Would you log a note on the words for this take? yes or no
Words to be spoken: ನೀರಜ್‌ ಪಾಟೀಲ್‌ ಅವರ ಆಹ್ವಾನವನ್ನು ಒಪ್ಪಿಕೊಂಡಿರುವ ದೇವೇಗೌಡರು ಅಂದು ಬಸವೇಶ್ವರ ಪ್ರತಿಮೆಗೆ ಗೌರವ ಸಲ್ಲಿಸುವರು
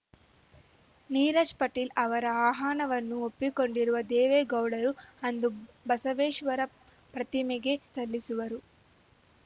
yes